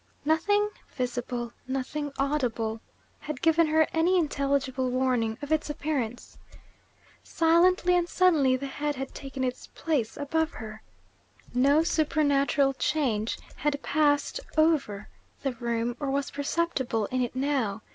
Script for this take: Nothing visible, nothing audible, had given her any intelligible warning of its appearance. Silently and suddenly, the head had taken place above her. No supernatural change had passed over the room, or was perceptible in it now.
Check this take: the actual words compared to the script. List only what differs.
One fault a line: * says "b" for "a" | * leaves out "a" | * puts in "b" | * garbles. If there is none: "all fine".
* puts in "its"